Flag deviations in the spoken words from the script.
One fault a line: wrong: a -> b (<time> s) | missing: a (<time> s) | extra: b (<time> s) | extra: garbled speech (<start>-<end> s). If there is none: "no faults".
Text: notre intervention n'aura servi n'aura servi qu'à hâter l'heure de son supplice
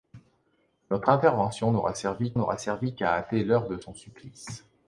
no faults